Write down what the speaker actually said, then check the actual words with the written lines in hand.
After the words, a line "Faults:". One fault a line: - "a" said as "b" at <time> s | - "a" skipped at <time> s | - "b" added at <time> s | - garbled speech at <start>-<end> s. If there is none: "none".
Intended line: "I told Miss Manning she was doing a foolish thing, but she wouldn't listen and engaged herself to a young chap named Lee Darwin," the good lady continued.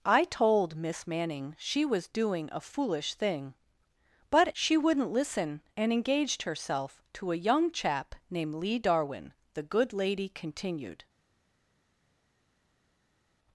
"I told Miss Manning she was doing a foolish thing, but she wouldn't listen and engaged herself to a young chap named Lee Darwin," the good lady continued.
Faults:
none